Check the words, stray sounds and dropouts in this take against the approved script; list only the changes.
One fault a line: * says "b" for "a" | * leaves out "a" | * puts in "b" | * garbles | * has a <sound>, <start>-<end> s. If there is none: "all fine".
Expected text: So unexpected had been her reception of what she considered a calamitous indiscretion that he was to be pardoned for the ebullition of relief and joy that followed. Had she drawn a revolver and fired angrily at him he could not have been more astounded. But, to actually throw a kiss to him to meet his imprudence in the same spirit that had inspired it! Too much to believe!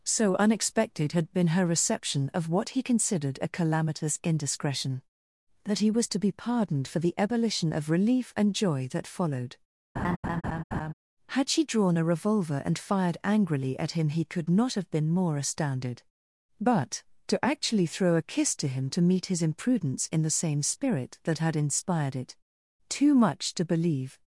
* says "he" for "she"
* has a laugh, 10.0-10.9 s